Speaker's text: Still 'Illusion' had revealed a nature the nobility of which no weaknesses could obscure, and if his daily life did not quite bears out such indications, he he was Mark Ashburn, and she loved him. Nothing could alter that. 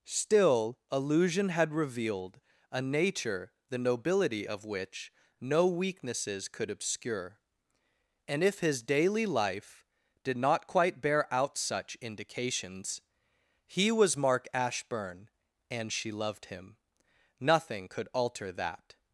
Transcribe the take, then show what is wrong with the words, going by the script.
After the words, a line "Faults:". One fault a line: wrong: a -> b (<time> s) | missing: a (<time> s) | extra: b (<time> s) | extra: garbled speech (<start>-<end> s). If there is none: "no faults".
Still 'Illusion' had revealed a nature the nobility of which no weaknesses could obscure, and if his daily life did not quite bear out such indications, he was Mark Ashburn, and she loved him. Nothing could alter that.
Faults:
wrong: bears -> bear (11.0 s)
missing: he (13.9 s)